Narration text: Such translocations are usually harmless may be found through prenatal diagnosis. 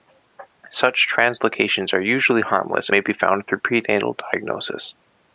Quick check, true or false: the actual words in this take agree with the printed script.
true